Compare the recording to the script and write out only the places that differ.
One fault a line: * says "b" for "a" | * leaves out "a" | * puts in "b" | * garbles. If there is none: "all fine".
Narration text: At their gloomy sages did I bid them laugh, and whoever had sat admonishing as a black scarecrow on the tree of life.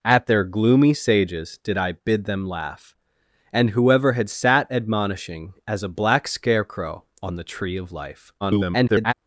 * garbles